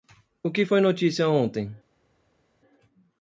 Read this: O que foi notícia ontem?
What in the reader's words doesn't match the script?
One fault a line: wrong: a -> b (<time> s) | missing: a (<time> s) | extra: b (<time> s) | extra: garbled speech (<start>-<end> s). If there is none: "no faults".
no faults